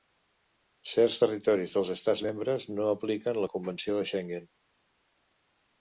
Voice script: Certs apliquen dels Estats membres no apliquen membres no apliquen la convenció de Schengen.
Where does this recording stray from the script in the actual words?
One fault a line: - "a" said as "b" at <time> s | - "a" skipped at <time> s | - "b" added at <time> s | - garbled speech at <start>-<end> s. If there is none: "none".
- "apliquen" said as "territoris" at 1.2 s
- "membres no apliquen" skipped at 3.4 s